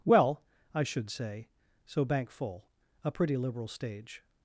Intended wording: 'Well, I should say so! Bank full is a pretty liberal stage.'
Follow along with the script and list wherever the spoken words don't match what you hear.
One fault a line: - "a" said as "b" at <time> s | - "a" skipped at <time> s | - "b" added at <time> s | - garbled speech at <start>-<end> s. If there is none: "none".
- "is" skipped at 2.7 s